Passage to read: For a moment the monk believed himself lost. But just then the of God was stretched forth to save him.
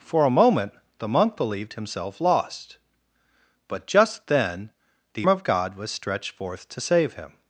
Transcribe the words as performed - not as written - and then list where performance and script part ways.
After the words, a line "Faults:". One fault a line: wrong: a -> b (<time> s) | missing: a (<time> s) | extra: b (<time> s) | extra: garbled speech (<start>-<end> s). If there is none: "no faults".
For a moment the monk believed himself lost. But just then the of God was stretched forth to save him.
Faults:
no faults